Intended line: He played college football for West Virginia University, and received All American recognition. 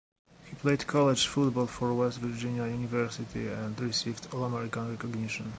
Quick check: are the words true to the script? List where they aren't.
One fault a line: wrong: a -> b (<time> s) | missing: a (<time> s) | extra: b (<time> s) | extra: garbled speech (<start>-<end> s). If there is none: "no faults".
no faults